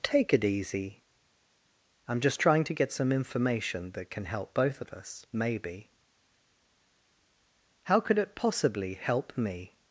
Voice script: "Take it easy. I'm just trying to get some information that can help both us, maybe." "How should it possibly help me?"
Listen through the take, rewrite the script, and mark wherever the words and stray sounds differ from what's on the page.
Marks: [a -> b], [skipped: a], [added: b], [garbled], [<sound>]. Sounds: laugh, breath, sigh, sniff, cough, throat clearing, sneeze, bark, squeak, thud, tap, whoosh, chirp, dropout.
"Take it easy. I'm just trying to get some information that can help both [added: of] us, maybe." "How [should -> could] it possibly help me?"